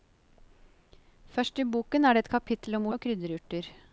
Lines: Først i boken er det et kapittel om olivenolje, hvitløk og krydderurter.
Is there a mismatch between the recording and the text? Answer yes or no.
yes